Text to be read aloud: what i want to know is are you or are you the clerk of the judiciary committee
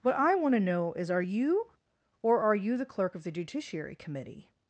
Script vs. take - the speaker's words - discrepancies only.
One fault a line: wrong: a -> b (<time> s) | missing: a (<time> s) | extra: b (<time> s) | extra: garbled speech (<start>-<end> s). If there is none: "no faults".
no faults